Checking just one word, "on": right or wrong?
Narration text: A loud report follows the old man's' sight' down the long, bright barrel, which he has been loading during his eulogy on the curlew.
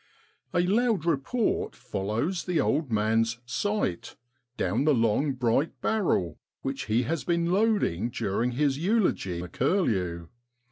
wrong